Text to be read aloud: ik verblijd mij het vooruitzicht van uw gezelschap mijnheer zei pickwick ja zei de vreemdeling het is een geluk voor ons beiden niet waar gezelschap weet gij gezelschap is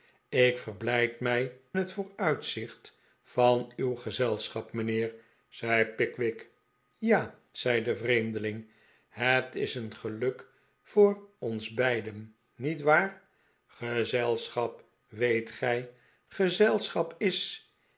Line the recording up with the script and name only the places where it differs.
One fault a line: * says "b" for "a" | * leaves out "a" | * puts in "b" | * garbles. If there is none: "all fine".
all fine